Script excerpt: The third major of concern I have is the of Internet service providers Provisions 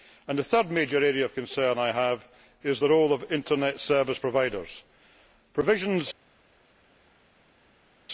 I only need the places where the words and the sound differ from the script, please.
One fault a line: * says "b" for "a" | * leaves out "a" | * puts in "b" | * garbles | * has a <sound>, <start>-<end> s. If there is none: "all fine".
* puts in "area"
* puts in "role"